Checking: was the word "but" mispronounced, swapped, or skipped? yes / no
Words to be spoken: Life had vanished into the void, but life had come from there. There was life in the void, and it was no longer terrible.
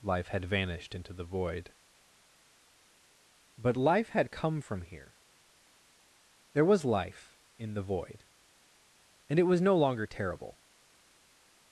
no